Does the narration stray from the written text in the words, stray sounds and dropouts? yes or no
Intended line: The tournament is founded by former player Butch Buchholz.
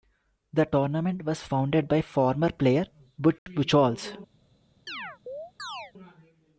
yes